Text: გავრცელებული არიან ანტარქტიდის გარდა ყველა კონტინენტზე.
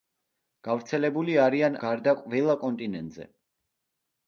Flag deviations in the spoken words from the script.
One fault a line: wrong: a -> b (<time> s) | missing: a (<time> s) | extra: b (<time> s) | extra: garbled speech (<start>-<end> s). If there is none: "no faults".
missing: ანტარქტიდის (1.8 s)